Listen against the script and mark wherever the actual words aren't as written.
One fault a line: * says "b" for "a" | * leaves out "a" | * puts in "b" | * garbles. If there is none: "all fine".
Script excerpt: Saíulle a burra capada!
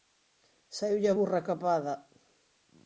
all fine